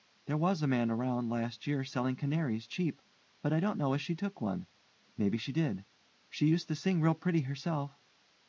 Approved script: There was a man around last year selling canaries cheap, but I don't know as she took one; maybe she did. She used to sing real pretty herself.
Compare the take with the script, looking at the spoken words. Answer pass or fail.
pass